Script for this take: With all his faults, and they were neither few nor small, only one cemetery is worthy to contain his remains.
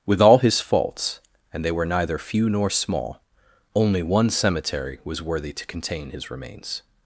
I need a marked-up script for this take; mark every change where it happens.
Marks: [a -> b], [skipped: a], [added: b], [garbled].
With all his faults, and they were neither few nor small, only one cemetery [is -> was] worthy to contain his remains.